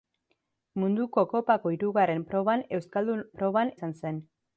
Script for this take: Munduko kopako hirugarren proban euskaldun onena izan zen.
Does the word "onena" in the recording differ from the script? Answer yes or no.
yes